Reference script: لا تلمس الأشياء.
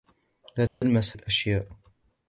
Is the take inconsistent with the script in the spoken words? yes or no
no